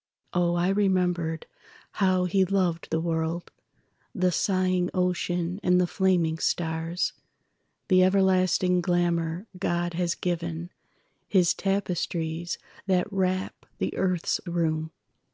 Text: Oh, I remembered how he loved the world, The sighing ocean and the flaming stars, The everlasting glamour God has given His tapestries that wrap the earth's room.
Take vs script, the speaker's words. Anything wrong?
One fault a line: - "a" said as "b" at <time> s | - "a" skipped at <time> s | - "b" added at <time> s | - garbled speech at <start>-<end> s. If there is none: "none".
none